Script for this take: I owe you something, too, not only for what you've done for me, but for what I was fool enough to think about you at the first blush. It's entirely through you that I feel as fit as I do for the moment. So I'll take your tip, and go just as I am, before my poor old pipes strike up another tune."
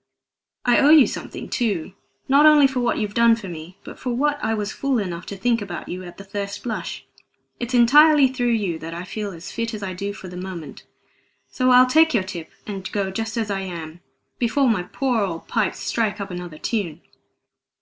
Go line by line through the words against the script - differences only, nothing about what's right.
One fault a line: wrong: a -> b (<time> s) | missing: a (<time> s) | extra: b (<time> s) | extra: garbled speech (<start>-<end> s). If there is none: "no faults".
no faults